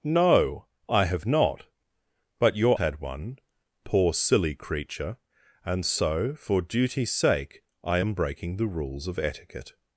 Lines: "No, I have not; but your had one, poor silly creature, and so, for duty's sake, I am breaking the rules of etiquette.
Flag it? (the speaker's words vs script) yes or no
no